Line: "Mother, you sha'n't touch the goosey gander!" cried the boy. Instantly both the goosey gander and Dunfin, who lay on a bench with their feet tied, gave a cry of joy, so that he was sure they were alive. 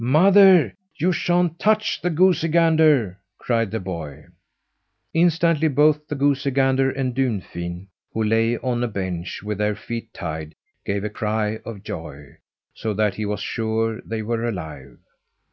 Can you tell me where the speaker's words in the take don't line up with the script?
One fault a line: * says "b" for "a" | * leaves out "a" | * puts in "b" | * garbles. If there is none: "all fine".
all fine